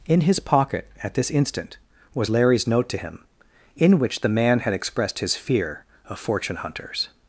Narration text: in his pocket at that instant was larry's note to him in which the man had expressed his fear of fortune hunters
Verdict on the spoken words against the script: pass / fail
fail